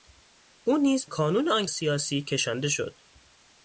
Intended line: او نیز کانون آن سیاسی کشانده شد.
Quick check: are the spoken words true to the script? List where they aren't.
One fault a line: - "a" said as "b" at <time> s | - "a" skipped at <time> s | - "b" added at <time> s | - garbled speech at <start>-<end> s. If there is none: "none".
none